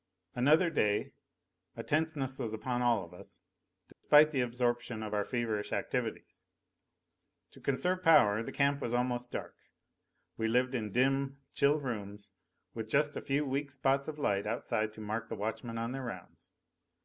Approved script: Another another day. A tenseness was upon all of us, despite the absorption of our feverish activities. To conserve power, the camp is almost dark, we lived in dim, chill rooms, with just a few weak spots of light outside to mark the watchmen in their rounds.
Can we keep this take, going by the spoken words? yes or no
no